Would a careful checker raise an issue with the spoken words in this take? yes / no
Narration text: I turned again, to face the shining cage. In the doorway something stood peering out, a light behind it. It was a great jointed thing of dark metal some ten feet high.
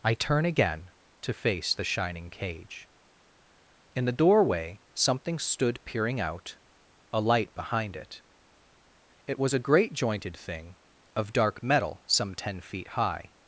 yes